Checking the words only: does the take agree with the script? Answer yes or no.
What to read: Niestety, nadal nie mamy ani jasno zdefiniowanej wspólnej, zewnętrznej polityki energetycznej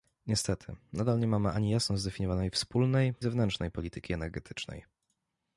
yes